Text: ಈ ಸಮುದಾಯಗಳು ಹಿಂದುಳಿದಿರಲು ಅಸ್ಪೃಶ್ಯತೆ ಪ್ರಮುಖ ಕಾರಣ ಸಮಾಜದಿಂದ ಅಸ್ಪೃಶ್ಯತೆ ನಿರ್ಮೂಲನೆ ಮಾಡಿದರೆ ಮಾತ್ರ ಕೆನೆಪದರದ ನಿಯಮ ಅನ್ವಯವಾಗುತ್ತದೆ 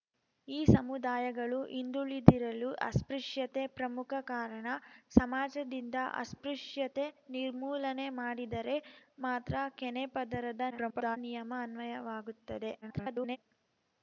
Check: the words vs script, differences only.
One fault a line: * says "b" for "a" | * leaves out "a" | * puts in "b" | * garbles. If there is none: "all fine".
* garbles
* garbles